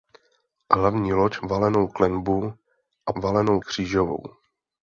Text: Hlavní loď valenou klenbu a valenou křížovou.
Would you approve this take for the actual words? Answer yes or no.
yes